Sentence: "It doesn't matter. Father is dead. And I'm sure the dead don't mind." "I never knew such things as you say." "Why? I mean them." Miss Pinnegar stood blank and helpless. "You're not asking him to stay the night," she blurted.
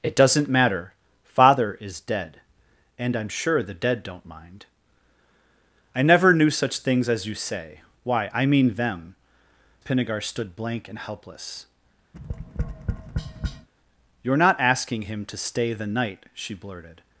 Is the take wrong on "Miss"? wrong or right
wrong